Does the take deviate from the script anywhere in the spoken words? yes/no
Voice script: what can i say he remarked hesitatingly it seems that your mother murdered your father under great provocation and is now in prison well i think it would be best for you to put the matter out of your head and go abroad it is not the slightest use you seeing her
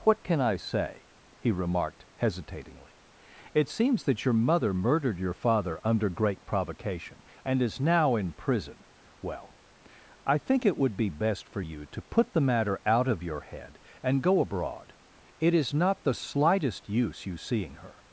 no